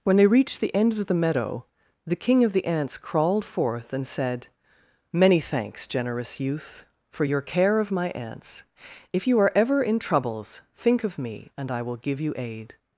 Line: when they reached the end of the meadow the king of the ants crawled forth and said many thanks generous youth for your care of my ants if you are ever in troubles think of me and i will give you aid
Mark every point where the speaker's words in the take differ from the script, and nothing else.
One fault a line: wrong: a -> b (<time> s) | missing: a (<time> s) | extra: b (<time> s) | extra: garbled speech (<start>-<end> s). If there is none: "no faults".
no faults